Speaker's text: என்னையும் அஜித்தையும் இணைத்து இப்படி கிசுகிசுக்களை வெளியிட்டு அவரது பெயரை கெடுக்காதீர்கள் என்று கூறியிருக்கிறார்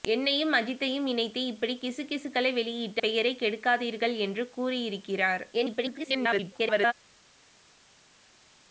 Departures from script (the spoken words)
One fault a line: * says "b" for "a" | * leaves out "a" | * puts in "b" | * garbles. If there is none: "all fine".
* leaves out "அவரது"
* garbles